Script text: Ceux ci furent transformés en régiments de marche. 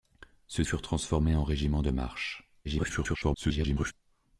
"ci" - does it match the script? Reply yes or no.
no